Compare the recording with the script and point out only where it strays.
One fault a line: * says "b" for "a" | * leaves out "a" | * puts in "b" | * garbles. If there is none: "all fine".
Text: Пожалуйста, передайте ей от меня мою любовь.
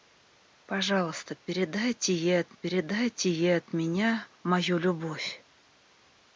* puts in "передайте ей от"